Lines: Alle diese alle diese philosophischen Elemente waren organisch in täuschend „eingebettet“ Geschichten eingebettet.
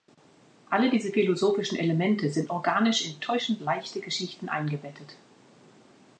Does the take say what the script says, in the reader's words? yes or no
no